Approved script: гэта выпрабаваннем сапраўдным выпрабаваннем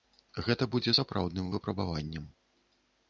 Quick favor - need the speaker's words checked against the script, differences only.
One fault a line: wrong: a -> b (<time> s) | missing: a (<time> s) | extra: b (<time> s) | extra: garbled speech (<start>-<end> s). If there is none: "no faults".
wrong: выпрабаваннем -> будзе (0.8 s)